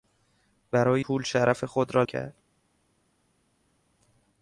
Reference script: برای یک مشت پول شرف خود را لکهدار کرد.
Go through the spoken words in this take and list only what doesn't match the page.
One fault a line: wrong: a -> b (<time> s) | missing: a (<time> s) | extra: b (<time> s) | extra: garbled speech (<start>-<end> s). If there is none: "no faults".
missing: یک مشت (1.0 s)
missing: لکهدار (2.0 s)